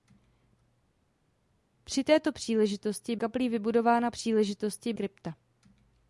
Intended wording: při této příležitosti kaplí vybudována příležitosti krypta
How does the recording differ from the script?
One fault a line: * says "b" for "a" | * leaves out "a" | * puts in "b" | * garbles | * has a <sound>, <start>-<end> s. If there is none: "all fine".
all fine